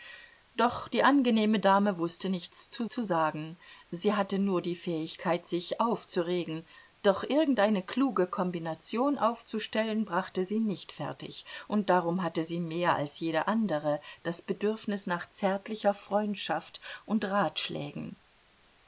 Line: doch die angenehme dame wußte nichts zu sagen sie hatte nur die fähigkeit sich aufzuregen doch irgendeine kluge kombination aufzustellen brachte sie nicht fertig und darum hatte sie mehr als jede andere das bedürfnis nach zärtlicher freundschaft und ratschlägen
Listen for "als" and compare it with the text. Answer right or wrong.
right